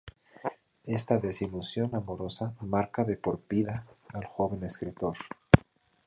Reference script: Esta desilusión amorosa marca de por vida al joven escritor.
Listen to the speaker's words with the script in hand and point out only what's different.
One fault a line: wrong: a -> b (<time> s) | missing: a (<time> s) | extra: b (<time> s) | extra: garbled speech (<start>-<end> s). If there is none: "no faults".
no faults